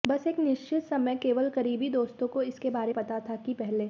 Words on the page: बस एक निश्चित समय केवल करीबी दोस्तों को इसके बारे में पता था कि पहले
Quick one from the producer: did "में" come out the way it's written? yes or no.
no